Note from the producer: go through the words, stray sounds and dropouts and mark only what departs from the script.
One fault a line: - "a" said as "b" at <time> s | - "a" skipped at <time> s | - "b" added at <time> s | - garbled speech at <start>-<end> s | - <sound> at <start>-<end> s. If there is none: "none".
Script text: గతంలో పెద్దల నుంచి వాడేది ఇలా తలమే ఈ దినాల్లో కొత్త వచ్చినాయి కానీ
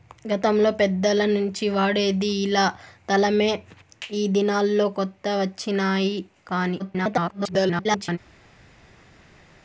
- garbled speech at 6.8-8.2 s